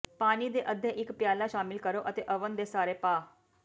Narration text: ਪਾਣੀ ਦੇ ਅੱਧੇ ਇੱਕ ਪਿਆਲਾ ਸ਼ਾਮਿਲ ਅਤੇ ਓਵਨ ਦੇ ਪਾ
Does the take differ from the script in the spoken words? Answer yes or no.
yes